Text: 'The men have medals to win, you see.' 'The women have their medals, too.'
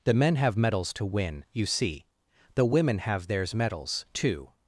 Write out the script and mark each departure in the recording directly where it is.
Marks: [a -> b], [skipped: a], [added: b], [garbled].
'The men have medals to win, you see.' 'The women have [their -> theirs] medals, too.'